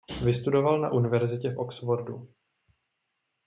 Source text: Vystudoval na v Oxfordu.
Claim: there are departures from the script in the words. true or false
true